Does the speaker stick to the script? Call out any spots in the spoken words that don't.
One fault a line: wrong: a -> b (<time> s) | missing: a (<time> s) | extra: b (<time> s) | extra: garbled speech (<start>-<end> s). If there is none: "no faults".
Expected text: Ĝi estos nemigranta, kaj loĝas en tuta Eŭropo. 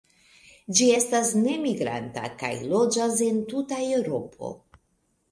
wrong: estos -> estas (1.0 s)